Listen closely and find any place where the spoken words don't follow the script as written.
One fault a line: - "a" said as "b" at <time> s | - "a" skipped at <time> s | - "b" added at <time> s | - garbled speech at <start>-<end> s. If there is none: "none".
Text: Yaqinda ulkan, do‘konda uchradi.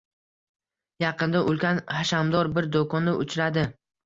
- "hashamdor bir" added at 2.0 s